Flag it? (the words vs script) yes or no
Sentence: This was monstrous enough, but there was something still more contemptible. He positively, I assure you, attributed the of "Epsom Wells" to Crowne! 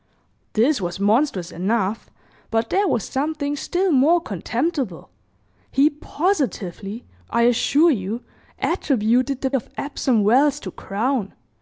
no